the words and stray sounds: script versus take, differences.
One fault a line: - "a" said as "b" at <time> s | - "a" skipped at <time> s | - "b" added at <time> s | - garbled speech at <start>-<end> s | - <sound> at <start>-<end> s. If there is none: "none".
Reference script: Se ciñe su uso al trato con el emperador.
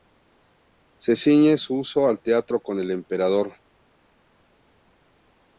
none